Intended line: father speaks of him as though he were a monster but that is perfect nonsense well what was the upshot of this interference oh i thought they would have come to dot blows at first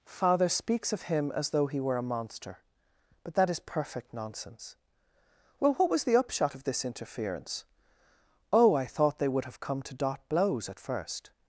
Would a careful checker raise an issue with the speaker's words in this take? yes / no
no